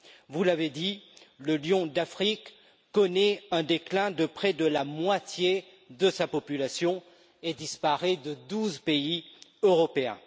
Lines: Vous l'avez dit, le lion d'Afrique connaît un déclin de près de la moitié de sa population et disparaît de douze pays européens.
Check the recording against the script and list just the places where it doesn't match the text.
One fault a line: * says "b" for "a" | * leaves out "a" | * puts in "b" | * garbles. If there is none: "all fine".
all fine